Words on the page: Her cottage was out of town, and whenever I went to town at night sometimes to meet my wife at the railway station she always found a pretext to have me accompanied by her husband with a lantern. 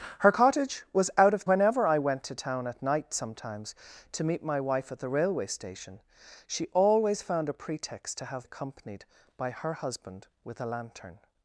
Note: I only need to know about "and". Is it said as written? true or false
false